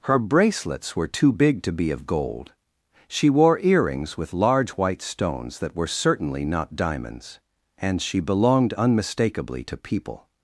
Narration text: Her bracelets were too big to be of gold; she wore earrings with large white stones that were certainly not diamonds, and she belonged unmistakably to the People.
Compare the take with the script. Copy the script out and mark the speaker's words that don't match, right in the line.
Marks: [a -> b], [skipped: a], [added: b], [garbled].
Her bracelets were too big to be of gold; she wore earrings with large white stones that were certainly not diamonds, and she belonged unmistakably to [skipped: the] People.